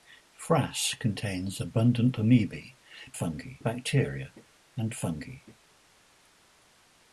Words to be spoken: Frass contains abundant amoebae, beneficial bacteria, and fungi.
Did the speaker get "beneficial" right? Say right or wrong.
wrong